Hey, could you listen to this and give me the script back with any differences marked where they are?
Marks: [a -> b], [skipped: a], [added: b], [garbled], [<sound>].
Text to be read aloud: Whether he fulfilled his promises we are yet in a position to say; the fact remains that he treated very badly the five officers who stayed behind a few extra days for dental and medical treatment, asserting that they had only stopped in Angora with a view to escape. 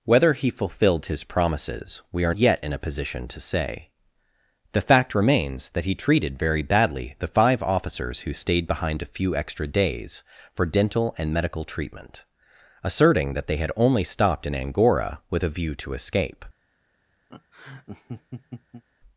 Whether he fulfilled his promises we are yet in a position to say; the fact remains that he treated very badly the five officers who stayed behind a few extra days for dental and medical treatment, asserting that they had only stopped in Angora with a view to escape. [laugh]